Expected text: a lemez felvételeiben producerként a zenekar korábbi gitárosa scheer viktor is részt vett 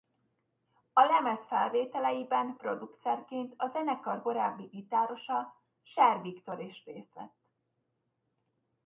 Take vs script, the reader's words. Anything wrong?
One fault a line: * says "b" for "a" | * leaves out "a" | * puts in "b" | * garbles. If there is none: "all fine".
all fine